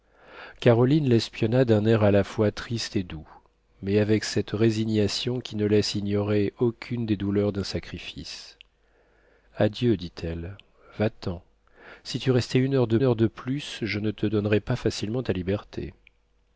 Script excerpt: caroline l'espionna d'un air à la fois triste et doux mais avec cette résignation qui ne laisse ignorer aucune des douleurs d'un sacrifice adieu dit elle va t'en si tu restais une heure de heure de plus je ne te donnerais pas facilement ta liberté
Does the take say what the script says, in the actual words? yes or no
yes